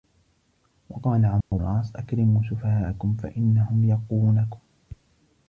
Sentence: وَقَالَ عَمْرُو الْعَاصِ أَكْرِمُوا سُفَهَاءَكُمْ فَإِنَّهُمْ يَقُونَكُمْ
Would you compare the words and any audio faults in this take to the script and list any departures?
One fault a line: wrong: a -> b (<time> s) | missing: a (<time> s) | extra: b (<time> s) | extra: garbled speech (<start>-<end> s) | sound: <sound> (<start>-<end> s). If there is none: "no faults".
sound: dropout (1.4-1.5 s)